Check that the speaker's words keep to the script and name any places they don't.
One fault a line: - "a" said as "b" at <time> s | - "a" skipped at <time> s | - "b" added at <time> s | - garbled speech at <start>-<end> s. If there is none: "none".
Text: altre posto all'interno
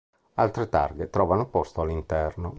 - "targhe trovano" added at 0.7 s